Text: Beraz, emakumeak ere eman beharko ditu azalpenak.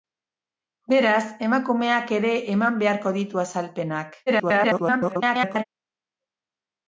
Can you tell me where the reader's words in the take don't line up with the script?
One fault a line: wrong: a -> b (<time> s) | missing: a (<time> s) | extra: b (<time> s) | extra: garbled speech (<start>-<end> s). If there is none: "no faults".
extra: garbled speech (4.3-5.7 s)